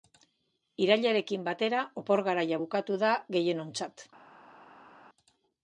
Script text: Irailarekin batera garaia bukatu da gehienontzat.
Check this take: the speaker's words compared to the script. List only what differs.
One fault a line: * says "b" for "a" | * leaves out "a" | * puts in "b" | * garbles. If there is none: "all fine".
* puts in "opor"